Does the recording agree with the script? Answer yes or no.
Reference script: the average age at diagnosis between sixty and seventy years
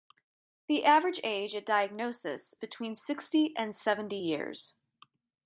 yes